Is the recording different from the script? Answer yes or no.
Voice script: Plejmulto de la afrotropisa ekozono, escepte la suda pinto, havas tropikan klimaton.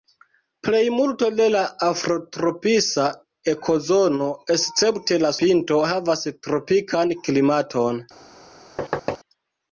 yes